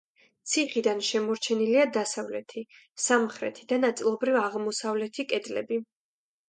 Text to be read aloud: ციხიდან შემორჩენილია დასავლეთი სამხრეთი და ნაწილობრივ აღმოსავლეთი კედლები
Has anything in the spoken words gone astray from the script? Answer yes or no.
no